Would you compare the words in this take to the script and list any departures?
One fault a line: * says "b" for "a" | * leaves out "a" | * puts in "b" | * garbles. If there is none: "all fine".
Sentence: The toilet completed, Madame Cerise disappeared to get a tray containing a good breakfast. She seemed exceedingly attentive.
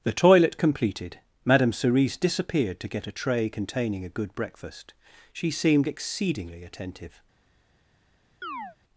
all fine